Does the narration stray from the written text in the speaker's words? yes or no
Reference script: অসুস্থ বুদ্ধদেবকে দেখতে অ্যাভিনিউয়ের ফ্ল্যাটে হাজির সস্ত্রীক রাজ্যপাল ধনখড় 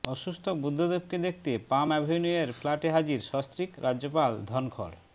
yes